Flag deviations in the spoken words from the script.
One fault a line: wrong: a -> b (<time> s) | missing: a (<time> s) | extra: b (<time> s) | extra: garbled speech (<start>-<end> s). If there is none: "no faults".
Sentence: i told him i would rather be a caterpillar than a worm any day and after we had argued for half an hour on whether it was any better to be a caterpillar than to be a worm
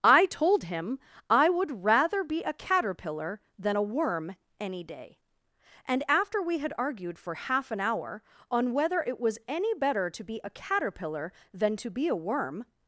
no faults